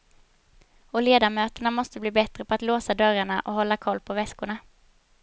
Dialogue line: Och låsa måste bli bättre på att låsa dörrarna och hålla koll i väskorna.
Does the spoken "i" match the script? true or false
false